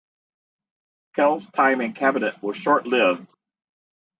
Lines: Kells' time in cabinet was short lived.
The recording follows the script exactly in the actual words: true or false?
true